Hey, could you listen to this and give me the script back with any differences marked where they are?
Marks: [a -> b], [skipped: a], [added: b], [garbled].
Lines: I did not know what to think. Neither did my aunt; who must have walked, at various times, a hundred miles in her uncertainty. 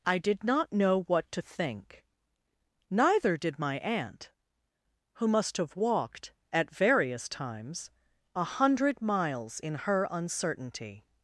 I did not know what to think. Neither did my aunt; who must have walked, at various times, a hundred miles in her uncertainty.